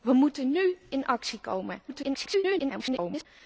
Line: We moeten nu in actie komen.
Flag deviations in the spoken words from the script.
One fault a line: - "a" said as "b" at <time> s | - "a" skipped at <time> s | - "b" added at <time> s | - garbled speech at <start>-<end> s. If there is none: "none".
- garbled speech at 1.9-3.3 s